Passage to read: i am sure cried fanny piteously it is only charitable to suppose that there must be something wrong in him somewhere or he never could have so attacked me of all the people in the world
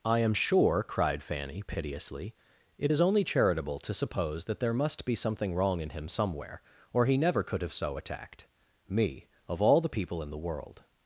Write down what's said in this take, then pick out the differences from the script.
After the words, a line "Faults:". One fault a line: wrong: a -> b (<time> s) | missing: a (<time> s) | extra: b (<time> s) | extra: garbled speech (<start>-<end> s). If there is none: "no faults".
i am sure cried fanny piteously it is only charitable to suppose that there must be something wrong in him somewhere or he never could have so attacked me of all the people in the world
Faults:
no faults